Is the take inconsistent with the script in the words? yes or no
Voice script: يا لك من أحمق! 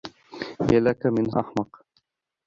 no